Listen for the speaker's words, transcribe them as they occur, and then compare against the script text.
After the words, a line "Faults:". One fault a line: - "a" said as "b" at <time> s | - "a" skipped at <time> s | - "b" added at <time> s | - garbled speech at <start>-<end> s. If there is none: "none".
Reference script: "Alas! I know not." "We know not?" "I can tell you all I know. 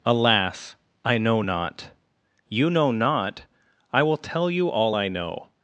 "Alas! I know not." "You know not?" "I will tell you all I know.
Faults:
- "We" said as "You" at 2.5 s
- "can" said as "will" at 4.0 s